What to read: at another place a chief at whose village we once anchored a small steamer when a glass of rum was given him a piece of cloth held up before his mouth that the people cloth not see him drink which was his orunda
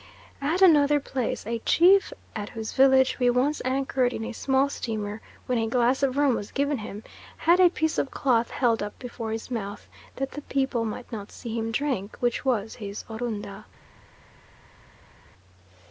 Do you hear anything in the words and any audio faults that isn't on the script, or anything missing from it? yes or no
yes